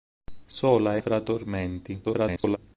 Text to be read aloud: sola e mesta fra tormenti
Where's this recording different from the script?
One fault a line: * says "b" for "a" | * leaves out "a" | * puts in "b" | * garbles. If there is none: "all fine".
* leaves out "mesta"
* garbles